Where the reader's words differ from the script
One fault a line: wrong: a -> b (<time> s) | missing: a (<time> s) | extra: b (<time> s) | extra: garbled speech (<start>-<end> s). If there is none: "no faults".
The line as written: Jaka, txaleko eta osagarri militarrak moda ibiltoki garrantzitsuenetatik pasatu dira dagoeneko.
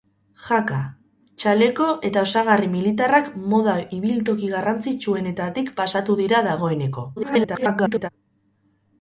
extra: garbled speech (7.2-8.1 s)